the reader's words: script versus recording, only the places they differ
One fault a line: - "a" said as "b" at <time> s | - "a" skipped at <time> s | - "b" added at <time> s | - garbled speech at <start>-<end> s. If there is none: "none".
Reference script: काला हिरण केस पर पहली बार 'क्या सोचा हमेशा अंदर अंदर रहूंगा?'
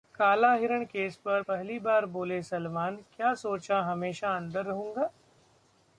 - "बोले सलमान" added at 2.1 s
- "अंदर" skipped at 4.7 s